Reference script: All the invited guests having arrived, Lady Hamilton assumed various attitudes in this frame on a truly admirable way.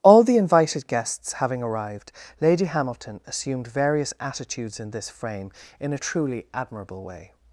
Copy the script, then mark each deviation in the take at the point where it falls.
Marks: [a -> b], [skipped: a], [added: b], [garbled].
All the invited guests having arrived, Lady Hamilton assumed various attitudes in this frame [on -> in] a truly admirable way.